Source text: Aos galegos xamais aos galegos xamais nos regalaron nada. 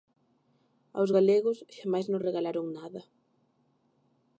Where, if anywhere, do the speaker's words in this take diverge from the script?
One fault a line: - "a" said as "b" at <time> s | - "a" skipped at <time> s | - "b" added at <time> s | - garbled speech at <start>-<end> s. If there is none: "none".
- "aos galegos xamais" skipped at 2.1 s